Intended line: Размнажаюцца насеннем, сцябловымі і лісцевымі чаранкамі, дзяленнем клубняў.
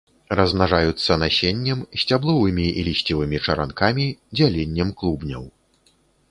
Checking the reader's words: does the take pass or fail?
pass